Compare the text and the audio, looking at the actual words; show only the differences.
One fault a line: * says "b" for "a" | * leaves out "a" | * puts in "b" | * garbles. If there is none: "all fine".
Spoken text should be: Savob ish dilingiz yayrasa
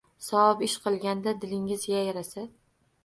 * puts in "qilganda"